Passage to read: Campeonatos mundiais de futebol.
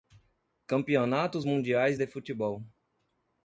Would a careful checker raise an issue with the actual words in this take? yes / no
no